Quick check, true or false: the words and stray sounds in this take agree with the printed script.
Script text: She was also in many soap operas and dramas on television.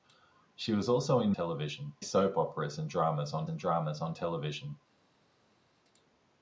false